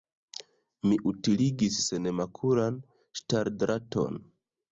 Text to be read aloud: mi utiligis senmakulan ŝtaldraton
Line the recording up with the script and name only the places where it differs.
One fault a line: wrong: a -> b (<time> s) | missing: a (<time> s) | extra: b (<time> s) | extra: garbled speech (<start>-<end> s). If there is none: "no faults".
no faults